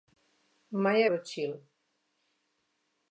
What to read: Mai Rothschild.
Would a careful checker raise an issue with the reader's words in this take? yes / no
no